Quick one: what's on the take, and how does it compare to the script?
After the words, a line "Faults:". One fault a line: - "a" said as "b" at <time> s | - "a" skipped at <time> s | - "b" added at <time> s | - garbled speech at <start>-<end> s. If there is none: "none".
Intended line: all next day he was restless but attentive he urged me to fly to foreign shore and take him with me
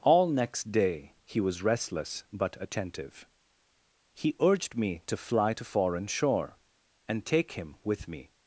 all next day he was restless but attentive he urged me to fly to foreign shore and take him with me
Faults:
none